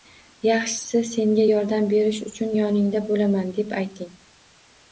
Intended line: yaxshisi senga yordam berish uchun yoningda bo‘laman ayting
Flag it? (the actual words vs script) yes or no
yes